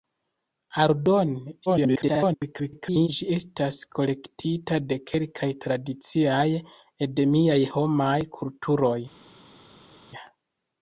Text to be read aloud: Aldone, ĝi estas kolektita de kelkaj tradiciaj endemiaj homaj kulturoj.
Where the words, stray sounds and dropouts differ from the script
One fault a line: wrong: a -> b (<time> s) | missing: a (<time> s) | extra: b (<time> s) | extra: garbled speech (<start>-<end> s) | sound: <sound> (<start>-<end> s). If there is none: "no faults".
extra: garbled speech (1.7-3.1 s)